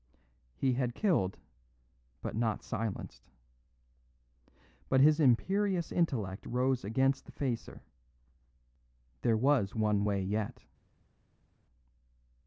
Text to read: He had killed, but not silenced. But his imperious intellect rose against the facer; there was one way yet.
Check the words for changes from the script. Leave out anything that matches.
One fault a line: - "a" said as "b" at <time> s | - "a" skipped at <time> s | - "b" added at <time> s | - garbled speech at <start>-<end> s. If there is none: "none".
none